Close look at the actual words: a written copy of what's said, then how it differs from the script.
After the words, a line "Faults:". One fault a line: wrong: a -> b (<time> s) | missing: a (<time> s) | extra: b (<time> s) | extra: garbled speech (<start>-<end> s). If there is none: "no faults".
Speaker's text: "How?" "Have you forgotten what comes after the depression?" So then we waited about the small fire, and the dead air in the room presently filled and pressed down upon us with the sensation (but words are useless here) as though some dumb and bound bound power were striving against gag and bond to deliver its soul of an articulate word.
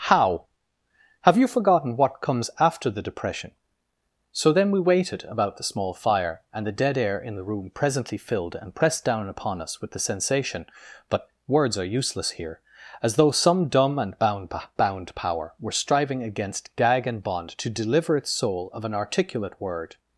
"How?" "Have you forgotten what comes after the depression?" So then we waited about the small fire, and the dead air in the room presently filled and pressed down upon us with the sensation (but words are useless here) as though some dumb and bound bound power were striving against gag and bond to deliver its soul of an articulate word.
Faults:
no faults